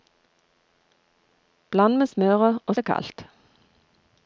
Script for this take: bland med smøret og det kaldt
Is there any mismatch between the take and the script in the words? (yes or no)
no